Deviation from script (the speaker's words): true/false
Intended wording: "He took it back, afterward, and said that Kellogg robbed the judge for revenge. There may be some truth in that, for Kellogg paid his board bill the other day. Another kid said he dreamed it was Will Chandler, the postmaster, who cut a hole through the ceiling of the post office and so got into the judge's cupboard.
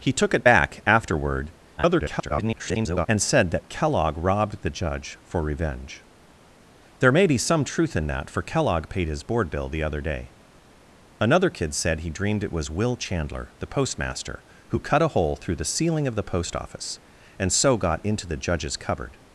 true